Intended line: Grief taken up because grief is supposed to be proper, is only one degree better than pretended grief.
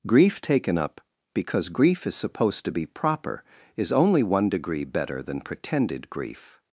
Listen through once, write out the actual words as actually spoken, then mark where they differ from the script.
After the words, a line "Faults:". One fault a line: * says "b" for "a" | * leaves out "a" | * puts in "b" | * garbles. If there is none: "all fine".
Grief taken up because grief is supposed to be proper, is only one degree better than pretended grief.
Faults:
all fine